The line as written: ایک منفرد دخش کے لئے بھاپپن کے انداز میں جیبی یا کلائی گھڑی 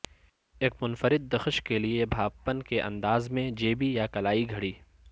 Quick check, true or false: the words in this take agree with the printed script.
true